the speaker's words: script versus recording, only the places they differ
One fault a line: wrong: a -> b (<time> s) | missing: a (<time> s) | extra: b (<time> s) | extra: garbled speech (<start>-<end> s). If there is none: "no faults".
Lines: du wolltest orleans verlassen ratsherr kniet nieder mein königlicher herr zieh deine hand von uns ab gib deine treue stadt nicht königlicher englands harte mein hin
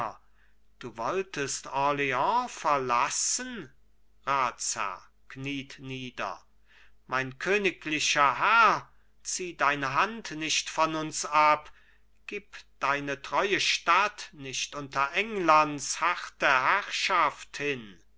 extra: nicht (10.3 s)
wrong: königlicher -> unter (14.7 s)
wrong: mein -> herrschaft (16.5 s)